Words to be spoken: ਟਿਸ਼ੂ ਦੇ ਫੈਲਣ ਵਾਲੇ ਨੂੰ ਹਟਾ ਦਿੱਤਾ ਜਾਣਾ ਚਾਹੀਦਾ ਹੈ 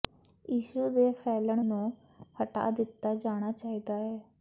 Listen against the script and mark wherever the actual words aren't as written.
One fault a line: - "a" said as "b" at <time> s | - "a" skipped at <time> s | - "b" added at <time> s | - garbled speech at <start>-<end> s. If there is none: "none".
- "ਵਾਲੇ" skipped at 1.6 s